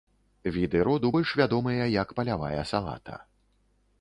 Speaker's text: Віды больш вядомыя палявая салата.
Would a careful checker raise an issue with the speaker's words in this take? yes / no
yes